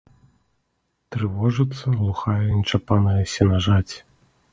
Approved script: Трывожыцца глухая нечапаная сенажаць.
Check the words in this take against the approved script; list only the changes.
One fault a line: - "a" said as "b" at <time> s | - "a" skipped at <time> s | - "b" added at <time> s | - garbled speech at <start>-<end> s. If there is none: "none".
none